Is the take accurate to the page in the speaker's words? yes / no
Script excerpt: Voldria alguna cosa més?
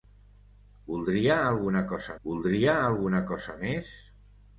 no